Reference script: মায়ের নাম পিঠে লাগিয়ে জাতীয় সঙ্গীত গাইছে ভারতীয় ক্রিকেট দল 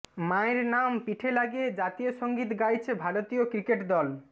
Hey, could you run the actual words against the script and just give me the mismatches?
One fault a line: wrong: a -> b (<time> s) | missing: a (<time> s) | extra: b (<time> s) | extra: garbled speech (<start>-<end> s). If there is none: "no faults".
no faults